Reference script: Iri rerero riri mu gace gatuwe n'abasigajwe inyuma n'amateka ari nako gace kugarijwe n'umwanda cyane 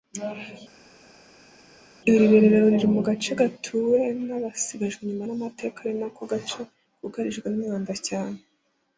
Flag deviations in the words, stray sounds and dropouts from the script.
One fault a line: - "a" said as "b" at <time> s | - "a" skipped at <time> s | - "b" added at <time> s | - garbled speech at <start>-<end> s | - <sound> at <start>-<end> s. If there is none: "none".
none